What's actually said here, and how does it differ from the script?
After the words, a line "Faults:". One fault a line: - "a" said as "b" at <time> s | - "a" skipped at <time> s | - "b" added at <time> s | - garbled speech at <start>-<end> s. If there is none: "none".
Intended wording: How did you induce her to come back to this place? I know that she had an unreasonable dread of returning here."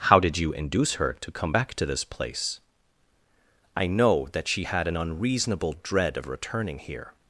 How did you induce her to come back to this place? I know that she had an unreasonable dread of returning here."
Faults:
none